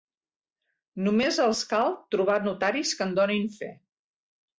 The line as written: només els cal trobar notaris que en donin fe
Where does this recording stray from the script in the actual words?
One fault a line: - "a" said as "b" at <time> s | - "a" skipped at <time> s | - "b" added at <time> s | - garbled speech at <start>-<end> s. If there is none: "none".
none